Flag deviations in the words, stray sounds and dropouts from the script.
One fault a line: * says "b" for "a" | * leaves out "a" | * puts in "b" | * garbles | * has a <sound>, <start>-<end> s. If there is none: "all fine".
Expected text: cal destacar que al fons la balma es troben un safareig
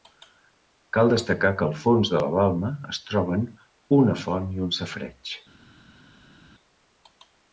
* puts in "de"
* puts in "una font i"